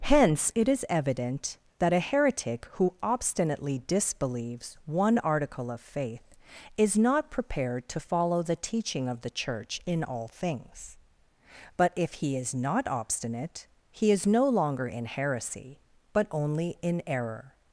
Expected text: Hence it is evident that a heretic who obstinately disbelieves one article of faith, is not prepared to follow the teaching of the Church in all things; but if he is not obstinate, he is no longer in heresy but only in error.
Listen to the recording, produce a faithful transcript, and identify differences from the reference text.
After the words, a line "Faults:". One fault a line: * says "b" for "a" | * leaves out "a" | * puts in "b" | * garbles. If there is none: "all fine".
Hence it is evident that a heretic who obstinately disbelieves one article of faith, is not prepared to follow the teaching of the Church in all things; but if he is not obstinate, he is no longer in heresy but only in error.
Faults:
all fine